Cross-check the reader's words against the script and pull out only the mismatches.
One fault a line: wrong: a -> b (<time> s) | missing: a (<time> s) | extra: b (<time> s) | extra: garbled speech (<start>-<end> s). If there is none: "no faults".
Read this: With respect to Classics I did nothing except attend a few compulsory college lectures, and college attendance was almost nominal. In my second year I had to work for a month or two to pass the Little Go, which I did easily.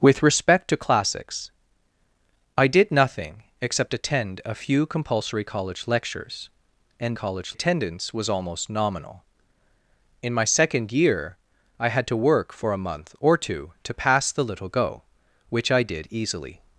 no faults